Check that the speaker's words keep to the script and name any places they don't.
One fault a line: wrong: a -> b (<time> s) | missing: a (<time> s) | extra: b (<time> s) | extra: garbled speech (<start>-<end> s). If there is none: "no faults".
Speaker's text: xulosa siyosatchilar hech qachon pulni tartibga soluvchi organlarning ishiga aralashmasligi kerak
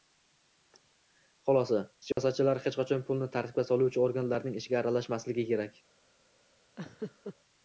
no faults